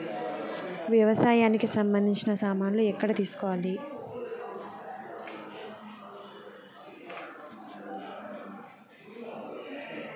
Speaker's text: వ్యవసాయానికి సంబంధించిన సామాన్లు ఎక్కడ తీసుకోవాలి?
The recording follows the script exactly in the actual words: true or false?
true